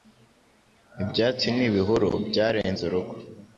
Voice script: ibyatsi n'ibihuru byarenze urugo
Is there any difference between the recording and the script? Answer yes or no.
no